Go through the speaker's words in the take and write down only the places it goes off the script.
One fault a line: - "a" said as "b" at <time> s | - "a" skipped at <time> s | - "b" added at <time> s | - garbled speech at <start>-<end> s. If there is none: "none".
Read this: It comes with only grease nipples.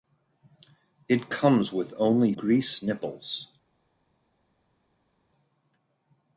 none